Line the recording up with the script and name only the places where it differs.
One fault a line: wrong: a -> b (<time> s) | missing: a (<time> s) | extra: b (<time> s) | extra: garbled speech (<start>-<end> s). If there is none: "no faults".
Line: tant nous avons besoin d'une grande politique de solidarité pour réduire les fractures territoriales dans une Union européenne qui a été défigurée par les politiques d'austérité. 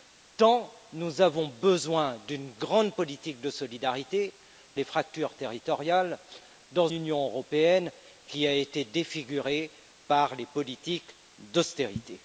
missing: pour réduire (4.3 s)
missing: une (6.9 s)